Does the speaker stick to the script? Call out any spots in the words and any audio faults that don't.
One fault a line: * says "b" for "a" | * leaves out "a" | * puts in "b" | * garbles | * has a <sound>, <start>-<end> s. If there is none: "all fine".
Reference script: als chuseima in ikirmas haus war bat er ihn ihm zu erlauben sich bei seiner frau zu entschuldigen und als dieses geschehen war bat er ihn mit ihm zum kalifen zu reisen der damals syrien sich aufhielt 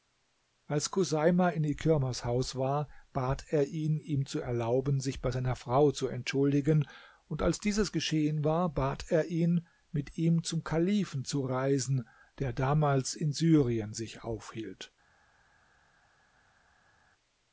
* puts in "in"